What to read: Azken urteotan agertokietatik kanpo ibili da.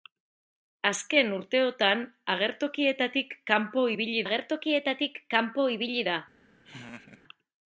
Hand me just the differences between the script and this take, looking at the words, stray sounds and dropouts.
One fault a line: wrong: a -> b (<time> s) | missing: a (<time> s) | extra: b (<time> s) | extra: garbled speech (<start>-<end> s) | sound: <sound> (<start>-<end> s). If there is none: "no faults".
extra: agertokietatik kanpo ibili (4.3 s)
sound: laugh (6.6-7.2 s)